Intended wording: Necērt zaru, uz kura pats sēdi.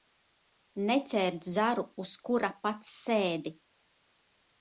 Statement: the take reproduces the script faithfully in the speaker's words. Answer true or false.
true